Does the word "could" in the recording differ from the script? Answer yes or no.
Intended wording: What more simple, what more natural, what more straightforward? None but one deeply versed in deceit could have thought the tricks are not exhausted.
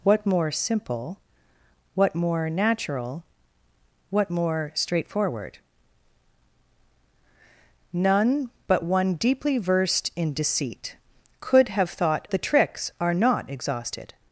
no